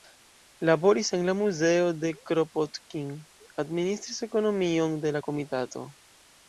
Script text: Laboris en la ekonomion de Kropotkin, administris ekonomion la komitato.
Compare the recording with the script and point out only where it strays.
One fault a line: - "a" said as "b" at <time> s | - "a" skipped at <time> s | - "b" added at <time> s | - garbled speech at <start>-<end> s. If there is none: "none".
- "ekonomion" said as "muzeo" at 1.4 s
- "de" added at 5.1 s